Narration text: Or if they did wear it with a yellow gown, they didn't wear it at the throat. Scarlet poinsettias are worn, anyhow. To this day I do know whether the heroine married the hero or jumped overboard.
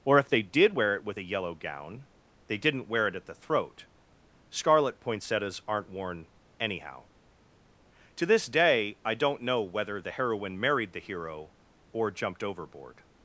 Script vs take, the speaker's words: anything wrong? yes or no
yes